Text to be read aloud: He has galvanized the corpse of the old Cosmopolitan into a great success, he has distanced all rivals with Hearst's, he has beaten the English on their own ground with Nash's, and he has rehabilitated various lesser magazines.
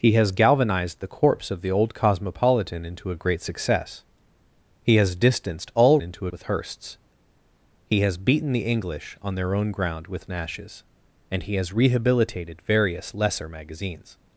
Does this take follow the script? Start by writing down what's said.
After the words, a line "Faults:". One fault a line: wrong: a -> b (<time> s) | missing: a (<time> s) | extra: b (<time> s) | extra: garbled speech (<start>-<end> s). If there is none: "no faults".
He has galvanized the corpse of the old Cosmopolitan into a great success, he has distanced all into with Hearst's, he has beaten the English on their own ground with Nash's, and he has rehabilitated various lesser magazines.
Faults:
wrong: rivals -> into (6.0 s)